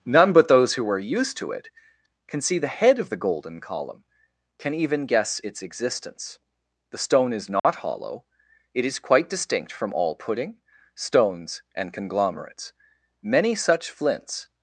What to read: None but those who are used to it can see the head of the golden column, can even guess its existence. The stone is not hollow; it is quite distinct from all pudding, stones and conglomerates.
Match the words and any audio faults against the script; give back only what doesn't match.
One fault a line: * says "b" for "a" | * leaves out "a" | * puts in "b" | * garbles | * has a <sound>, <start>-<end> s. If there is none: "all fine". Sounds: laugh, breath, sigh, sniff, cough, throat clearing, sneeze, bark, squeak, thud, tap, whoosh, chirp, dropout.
* has a dropout, 7.6-7.6 s
* puts in "Many such flints"